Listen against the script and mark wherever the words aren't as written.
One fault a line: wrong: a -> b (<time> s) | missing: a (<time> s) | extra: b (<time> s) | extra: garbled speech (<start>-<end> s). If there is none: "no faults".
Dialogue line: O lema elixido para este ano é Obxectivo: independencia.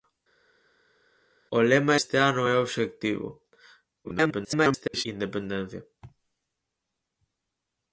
missing: elixido para (2.0 s)
extra: garbled speech (4.0-5.1 s)